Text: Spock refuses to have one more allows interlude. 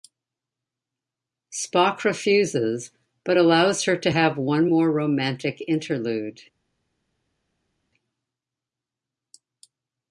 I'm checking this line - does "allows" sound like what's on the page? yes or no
no